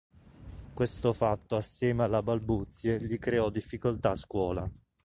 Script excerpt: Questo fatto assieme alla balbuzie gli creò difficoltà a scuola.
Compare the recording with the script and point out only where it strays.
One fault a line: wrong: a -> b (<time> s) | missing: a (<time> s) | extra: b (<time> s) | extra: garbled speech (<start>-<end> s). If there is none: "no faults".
no faults